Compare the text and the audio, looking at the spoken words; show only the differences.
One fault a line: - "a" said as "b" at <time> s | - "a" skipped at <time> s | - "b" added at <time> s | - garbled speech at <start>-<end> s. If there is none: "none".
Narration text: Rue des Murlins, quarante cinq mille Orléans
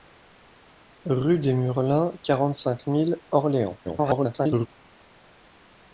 - garbled speech at 3.8-4.7 s